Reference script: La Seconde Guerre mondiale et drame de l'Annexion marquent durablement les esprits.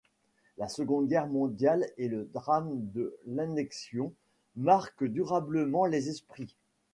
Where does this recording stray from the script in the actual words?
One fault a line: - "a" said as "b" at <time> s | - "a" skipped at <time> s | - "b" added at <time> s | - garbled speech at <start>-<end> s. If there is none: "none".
- "le" added at 2.1 s